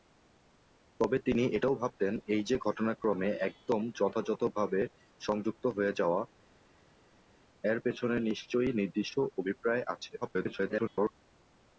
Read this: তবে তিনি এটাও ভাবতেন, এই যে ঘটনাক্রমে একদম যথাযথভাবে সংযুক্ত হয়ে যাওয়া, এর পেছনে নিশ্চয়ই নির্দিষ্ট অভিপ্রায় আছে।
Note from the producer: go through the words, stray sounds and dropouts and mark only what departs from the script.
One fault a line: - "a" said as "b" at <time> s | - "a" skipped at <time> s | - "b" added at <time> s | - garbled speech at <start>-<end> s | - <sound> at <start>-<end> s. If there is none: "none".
- garbled speech at 10.2-11.1 s